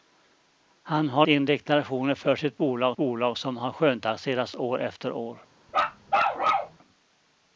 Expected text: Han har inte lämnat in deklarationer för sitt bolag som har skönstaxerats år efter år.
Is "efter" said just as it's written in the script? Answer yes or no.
yes